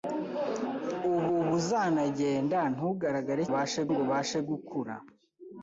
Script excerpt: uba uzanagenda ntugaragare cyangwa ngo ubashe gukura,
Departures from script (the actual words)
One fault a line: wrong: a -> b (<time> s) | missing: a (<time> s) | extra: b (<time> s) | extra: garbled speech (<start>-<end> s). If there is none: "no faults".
extra: uba (1.4 s)
wrong: cyangwa -> ubashe (3.5 s)